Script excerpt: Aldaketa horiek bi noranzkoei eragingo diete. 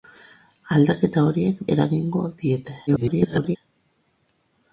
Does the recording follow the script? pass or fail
fail